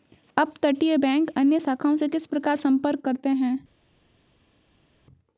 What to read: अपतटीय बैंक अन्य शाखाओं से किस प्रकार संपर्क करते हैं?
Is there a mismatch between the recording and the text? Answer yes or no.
no